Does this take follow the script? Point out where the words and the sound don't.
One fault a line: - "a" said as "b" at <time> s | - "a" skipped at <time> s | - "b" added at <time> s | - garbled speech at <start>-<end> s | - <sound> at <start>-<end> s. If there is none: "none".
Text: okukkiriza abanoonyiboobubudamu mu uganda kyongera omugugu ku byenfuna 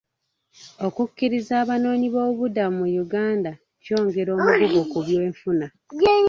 none